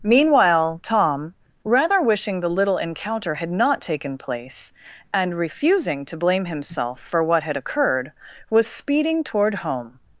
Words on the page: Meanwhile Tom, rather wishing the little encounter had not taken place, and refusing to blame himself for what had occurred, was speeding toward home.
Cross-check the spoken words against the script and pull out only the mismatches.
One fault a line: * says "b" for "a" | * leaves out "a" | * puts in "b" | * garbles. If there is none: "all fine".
all fine